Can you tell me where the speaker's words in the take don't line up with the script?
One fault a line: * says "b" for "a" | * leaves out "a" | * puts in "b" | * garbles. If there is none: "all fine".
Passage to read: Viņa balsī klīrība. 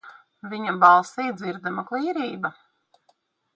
* puts in "dzirdama"